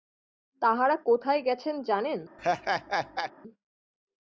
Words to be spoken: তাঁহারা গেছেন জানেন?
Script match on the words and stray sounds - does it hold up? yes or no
no